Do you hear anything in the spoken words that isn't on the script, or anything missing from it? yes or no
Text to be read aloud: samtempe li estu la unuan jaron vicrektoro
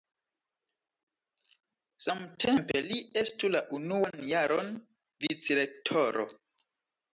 no